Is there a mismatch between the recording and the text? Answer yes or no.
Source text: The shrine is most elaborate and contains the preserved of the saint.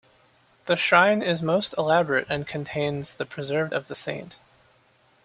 no